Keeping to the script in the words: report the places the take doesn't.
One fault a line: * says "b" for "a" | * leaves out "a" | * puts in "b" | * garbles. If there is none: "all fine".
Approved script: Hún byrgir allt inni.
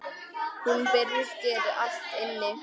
all fine